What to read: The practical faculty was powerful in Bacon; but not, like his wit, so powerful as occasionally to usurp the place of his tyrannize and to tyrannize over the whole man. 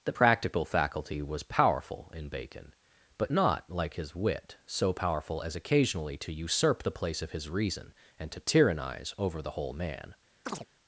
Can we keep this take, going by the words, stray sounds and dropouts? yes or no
no